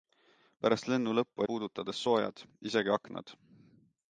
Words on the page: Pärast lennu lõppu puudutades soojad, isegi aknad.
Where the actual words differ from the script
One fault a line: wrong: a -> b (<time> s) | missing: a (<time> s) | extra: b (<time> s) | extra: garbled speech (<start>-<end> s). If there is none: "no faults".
no faults